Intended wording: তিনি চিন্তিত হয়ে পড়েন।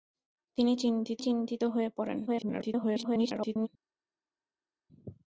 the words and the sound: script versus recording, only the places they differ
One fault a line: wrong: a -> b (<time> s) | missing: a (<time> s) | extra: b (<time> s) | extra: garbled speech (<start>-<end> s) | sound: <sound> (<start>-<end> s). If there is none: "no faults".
extra: চিন্তিত (1.2 s)
extra: garbled speech (2.3-3.7 s)